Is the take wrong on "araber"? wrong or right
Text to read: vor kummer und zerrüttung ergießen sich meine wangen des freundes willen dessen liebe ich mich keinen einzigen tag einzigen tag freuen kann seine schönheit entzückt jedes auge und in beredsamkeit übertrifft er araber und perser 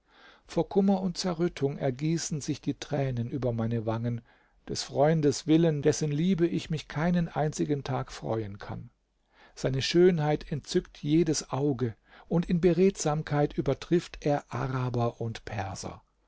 right